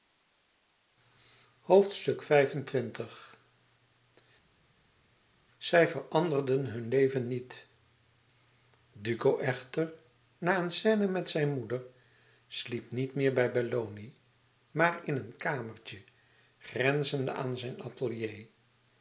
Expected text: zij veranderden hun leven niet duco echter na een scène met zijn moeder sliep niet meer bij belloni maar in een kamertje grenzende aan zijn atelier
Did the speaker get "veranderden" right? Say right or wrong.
right